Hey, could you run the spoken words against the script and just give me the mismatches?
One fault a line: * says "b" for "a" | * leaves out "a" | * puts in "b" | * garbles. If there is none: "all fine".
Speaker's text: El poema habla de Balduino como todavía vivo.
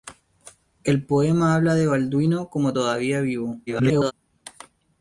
* garbles